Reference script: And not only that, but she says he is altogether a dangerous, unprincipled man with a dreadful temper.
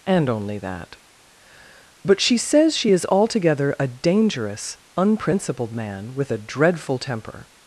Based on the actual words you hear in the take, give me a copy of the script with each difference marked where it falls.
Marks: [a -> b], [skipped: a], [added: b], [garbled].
And [skipped: not] only that, but she says [he -> she] is altogether a dangerous, unprincipled man with a dreadful temper.